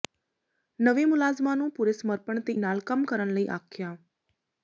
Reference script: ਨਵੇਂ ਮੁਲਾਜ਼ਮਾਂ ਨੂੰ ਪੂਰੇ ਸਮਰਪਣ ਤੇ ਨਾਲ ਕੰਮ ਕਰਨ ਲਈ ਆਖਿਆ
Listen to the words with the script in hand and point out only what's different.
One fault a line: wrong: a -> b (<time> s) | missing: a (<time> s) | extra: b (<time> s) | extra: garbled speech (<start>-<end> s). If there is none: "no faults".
no faults